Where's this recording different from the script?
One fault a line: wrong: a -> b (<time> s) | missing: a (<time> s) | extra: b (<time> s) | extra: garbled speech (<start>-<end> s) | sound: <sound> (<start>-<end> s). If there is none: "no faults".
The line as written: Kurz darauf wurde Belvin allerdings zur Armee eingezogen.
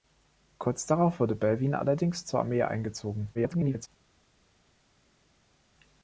extra: garbled speech (3.3-3.9 s)